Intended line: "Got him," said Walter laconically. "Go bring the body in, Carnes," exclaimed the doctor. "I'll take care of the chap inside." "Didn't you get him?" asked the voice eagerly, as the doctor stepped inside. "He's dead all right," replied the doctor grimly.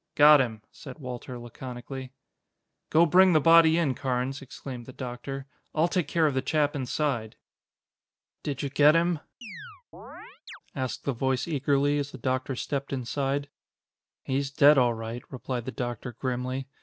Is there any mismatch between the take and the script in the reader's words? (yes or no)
yes